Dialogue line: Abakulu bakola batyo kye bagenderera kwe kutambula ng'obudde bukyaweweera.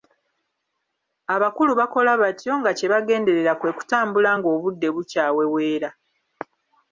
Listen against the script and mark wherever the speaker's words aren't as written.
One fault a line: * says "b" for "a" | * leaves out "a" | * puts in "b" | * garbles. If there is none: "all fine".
* puts in "nga"